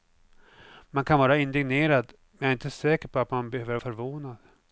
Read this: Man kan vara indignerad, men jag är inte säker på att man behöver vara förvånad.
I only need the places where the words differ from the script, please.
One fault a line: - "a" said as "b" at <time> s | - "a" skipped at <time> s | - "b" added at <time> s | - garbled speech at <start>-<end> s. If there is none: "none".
- "vara" skipped at 3.8 s